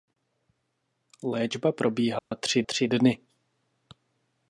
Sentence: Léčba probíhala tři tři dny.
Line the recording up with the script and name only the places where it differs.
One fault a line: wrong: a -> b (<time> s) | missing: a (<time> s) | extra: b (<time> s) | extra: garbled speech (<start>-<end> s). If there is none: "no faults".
no faults